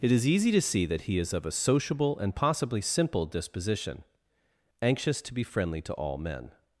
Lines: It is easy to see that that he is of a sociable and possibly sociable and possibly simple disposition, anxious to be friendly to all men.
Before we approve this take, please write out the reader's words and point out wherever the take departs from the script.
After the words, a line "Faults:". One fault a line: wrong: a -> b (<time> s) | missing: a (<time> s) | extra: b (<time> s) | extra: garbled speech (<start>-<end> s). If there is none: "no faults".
It is easy to see that he is of a sociable and possibly simple disposition, anxious to be friendly to all men.
Faults:
missing: that (1.0 s)
missing: sociable and possibly (2.8 s)